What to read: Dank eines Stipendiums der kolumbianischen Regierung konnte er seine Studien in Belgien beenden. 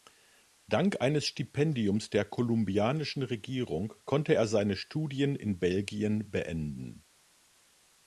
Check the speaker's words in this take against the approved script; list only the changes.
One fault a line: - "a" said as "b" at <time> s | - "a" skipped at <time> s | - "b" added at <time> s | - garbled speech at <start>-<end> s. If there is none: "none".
none